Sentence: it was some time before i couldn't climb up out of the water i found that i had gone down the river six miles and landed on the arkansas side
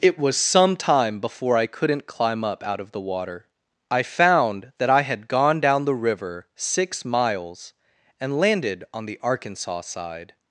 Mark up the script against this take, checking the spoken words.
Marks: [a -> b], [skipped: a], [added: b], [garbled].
it was some time before i couldn't climb up out of the water i found that i had gone down the river six miles and landed on the arkansas side